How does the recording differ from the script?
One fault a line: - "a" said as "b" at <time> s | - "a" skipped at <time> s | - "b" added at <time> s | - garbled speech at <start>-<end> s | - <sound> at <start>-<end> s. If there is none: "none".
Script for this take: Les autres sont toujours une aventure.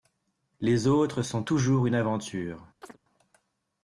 - chirp at 2.8-3.0 s